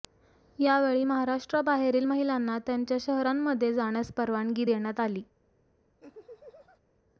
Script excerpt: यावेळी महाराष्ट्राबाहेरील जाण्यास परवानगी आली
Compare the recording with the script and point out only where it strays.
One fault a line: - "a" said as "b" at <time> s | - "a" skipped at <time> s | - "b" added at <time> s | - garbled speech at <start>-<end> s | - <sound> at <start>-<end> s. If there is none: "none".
- "महिलांना त्यांच्या शहरांमध्ये" added at 2.0 s
- "देण्यात" added at 4.6 s
- laugh at 6.0-6.8 s